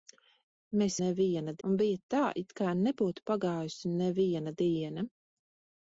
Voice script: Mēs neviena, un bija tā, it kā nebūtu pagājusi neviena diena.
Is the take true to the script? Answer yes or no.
yes